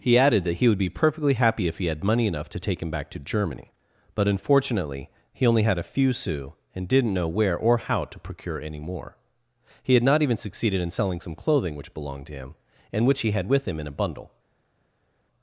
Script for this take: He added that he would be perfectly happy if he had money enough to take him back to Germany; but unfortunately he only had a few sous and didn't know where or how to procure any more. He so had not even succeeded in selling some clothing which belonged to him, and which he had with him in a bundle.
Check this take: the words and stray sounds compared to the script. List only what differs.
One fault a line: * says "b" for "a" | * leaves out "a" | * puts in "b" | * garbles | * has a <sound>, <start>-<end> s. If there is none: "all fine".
* leaves out "so"